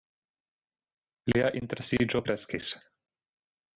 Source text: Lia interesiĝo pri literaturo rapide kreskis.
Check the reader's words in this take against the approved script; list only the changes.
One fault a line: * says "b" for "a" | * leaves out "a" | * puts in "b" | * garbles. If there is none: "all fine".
* leaves out "pri literaturo rapide"